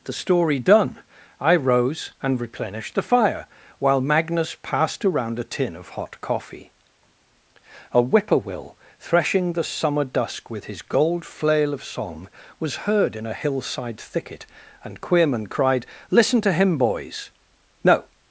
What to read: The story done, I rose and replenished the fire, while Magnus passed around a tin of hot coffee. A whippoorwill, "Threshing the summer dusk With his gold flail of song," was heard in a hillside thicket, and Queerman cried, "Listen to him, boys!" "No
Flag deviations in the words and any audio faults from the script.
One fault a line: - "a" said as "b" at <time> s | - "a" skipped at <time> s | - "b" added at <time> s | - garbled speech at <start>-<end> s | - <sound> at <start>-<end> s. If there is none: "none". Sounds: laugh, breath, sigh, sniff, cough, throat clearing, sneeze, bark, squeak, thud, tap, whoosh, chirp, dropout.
none